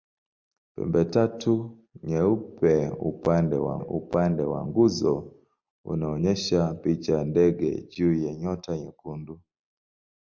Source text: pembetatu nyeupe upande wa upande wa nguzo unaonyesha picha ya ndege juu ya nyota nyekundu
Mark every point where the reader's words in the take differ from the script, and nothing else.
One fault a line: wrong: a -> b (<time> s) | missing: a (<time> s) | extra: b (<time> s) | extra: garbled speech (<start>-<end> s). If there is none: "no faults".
no faults